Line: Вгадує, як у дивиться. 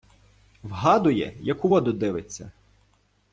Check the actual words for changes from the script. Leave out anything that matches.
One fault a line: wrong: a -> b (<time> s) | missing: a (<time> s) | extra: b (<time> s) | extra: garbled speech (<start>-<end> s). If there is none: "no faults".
extra: воду (1.6 s)